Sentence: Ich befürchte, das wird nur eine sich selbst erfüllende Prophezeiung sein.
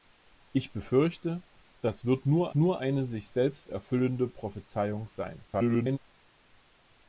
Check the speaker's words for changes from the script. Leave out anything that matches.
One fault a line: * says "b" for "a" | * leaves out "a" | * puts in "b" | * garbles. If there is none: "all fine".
* puts in "nur"
* garbles